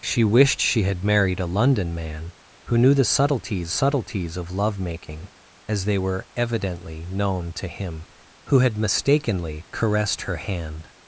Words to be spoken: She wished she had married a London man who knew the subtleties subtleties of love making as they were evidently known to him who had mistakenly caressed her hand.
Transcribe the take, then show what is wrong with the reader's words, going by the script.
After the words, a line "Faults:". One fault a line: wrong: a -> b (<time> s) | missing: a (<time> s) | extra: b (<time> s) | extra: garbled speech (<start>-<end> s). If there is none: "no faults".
She wished she had married a London man who knew the subtleties subtleties of love making as they were evidently known to him who had mistakenly caressed her hand.
Faults:
no faults